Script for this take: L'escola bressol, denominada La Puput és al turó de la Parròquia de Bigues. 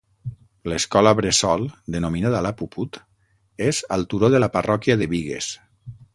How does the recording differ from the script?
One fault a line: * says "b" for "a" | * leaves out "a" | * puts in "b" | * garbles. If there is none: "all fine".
all fine